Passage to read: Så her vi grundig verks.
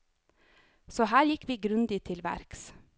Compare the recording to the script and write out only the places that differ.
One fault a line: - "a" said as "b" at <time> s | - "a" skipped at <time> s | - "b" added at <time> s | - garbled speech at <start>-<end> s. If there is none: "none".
- "gikk" added at 1.3 s
- "til" added at 2.0 s